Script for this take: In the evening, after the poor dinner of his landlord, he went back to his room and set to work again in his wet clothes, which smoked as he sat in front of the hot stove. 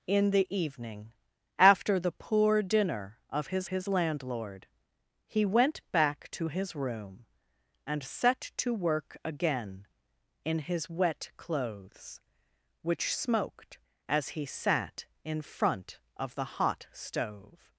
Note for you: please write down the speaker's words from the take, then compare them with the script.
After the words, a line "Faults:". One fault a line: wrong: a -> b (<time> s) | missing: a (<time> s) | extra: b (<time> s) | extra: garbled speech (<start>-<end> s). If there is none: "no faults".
In the evening, after the poor dinner of his his landlord, he went back to his room and set to work again in his wet clothes, which smoked as he sat in front of the hot stove.
Faults:
extra: his (3.7 s)